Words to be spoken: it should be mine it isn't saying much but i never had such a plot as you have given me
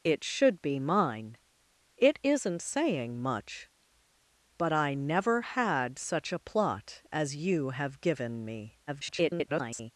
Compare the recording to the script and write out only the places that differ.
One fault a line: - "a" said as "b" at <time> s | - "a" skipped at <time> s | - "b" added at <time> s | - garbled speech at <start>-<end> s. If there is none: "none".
- garbled speech at 8.9-9.9 s